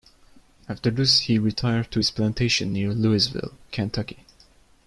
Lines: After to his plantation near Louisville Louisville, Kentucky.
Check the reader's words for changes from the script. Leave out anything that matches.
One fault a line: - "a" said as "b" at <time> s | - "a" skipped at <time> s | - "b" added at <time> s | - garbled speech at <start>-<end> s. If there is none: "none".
- "this he retired" added at 0.9 s
- "Louisville" skipped at 3.5 s